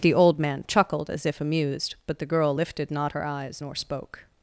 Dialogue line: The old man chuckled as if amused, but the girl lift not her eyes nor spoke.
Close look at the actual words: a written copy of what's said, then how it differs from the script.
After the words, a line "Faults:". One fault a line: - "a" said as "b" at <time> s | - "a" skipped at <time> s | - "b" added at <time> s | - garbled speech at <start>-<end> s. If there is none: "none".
The old man chuckled as if amused, but the girl lifted not her eyes nor spoke.
Faults:
- "lift" said as "lifted" at 2.5 s